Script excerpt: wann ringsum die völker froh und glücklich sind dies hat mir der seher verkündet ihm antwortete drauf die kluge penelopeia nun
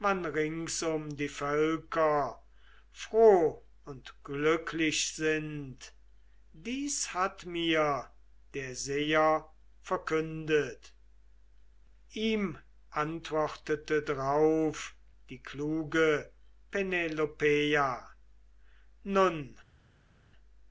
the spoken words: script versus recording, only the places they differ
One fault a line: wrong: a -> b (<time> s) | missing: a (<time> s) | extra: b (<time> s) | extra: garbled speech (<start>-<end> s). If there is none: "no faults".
no faults